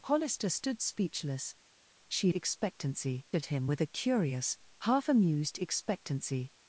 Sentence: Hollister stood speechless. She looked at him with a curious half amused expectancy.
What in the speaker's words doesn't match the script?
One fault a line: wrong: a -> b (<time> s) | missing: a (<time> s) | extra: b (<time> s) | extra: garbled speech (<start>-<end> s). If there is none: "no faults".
wrong: looked -> expectancy (2.3 s)